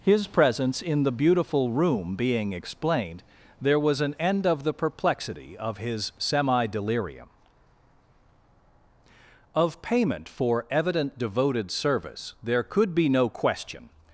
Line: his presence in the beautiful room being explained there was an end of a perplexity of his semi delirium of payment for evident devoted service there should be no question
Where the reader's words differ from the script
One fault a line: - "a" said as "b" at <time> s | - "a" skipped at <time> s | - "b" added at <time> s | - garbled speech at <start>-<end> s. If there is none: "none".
- "a" said as "the" at 4.6 s
- "should" said as "could" at 12.6 s